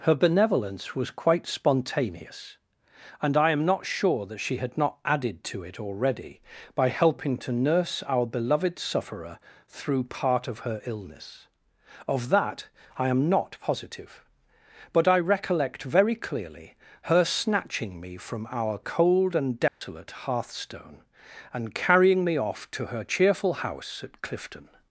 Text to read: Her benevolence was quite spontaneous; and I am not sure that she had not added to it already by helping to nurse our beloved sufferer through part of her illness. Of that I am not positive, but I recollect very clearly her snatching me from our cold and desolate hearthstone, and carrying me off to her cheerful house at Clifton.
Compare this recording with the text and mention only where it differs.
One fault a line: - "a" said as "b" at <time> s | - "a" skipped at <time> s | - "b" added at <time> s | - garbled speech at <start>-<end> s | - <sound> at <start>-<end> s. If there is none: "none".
- dropout at 19.7-19.8 s